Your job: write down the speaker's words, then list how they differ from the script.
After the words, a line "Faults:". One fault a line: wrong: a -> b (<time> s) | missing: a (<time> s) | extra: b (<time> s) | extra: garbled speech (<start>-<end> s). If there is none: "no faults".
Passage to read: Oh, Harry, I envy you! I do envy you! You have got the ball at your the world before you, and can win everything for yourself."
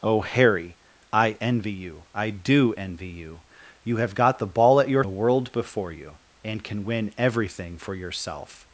Oh, Harry, I envy you! I do envy you! You have got the ball at your the world before you, and can win everything for yourself."
Faults:
no faults